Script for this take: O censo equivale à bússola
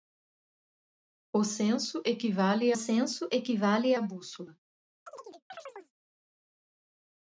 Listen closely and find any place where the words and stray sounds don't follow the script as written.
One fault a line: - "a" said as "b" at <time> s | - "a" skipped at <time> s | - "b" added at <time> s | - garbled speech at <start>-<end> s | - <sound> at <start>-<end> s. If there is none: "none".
- "censo equivale" added at 2.7 s
- chirp at 5.1-5.9 s